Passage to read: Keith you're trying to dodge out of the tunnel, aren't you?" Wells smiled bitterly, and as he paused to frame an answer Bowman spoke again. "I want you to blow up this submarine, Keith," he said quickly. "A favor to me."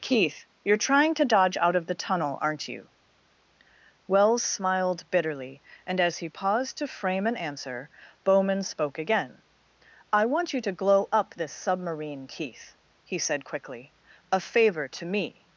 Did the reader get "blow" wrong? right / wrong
wrong